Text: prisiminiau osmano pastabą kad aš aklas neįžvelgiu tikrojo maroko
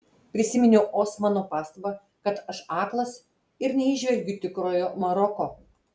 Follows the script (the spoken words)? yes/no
no